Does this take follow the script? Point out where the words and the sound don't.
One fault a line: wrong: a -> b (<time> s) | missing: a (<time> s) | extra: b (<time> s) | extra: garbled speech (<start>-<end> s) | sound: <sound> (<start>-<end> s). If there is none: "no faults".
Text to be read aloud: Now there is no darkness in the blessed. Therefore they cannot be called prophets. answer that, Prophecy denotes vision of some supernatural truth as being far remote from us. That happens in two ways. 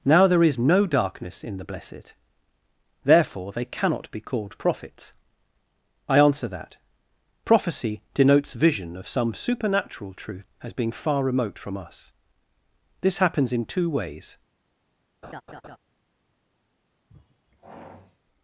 extra: I (6.1 s)
wrong: That -> This (13.0 s)
sound: laugh (15.2-15.8 s)
sound: sigh (17.1-18.2 s)